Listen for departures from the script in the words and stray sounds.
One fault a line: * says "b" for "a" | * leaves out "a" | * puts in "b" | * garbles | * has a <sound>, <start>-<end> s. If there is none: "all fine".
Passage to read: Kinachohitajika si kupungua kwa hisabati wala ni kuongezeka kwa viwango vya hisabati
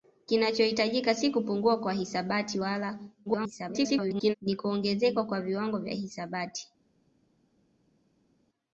* garbles